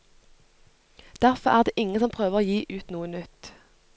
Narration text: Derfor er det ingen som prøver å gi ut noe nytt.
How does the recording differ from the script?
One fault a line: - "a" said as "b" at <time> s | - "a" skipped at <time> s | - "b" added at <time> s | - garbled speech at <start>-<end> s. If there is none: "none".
none